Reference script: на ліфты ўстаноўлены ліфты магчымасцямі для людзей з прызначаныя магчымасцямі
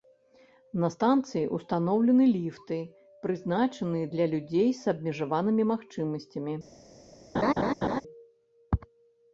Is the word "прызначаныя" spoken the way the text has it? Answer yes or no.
no